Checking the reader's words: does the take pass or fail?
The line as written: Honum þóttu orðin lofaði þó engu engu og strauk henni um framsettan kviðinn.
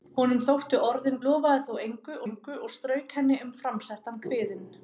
pass